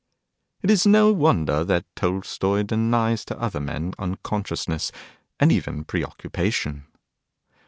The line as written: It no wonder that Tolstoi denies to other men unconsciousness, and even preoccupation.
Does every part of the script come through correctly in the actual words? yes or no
no